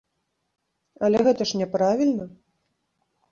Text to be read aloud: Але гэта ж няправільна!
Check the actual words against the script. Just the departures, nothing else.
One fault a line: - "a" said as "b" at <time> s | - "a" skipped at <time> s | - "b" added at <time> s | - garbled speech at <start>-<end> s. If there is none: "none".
none